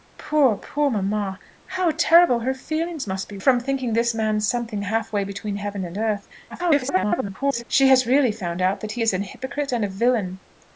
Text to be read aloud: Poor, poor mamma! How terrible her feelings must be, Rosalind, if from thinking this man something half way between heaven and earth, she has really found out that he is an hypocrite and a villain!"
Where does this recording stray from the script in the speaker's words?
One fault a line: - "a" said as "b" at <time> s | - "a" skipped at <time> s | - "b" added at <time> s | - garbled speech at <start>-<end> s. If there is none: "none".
- "Rosalind if" skipped at 3.4 s
- garbled speech at 6.5-7.6 s